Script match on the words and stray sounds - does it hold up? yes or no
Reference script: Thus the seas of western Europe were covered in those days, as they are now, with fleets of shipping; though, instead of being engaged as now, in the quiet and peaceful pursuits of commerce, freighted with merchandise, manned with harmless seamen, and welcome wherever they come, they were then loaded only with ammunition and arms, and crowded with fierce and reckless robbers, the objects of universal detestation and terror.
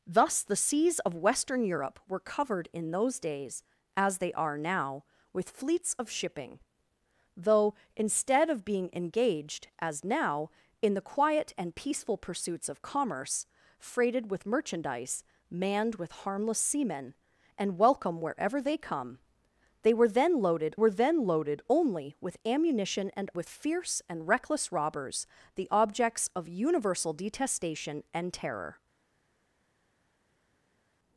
no